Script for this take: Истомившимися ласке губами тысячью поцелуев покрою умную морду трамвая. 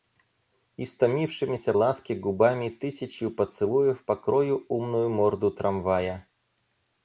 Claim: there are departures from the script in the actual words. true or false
false